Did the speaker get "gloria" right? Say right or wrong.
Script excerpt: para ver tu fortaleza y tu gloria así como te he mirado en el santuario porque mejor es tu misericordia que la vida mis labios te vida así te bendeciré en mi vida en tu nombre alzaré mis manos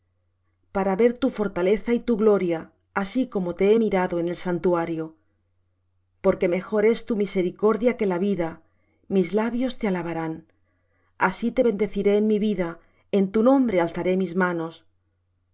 right